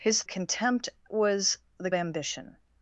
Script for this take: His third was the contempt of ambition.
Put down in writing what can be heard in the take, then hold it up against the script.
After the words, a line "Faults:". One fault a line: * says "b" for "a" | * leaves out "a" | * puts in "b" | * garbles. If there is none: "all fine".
His contempt was the ambition.
Faults:
* says "contempt" for "third"
* leaves out "contempt of"